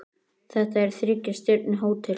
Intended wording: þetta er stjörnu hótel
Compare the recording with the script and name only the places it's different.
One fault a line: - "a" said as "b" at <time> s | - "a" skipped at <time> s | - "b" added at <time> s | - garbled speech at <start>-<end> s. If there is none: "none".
- "þriggja" added at 1.0 s